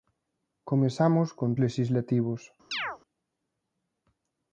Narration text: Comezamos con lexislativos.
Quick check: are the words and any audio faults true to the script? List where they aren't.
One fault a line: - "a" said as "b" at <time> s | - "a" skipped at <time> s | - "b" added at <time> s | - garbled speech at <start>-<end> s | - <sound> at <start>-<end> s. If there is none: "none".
- chirp at 2.7-3.0 s